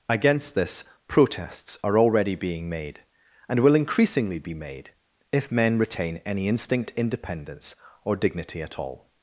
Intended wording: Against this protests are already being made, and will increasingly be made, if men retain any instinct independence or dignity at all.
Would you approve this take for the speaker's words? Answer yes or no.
yes